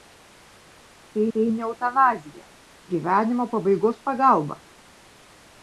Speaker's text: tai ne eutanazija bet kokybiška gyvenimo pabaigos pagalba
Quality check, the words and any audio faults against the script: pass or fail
fail